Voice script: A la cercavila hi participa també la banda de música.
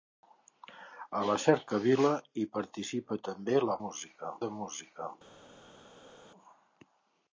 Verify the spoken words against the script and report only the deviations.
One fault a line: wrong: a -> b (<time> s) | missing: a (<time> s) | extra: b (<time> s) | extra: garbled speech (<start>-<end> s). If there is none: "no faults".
wrong: banda -> música (3.8 s)